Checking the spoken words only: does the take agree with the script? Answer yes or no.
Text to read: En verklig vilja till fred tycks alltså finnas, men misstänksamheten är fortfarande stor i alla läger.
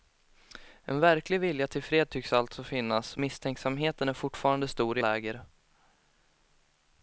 no